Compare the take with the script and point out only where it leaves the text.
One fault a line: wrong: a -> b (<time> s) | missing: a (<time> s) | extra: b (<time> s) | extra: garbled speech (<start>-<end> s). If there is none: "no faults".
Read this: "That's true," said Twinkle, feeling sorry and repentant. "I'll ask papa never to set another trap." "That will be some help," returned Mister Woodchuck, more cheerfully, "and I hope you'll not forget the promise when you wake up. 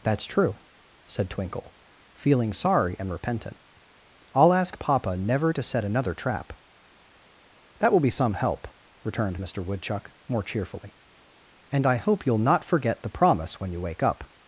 no faults